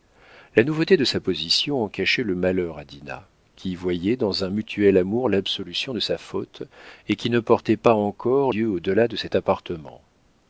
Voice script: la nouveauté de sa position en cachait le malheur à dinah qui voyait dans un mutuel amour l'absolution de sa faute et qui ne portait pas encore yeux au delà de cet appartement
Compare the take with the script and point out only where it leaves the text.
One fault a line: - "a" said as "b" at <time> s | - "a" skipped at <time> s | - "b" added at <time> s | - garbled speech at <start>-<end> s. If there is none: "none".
none